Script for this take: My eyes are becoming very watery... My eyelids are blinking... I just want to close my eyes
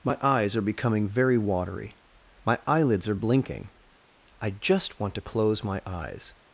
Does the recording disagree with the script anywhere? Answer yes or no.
no